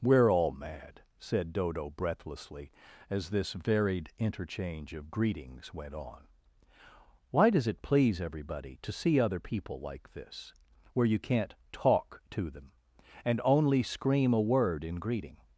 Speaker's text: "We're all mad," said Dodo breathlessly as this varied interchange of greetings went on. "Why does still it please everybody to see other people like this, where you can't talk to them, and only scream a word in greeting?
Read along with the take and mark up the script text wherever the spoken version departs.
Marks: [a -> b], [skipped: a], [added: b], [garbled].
"We're all mad," said Dodo breathlessly as this varied interchange of greetings went on. "Why does [skipped: still] it please everybody to see other people like this, where you can't talk to them, and only scream a word in greeting?